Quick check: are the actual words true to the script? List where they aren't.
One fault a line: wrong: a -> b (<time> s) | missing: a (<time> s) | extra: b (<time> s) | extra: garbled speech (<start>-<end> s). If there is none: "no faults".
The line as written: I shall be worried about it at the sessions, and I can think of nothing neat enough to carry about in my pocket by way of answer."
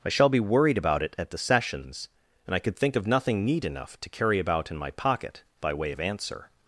wrong: can -> could (2.6 s)